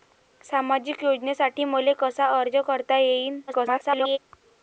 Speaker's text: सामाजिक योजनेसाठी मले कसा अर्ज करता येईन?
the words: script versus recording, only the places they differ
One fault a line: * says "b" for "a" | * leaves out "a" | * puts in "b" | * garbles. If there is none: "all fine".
* garbles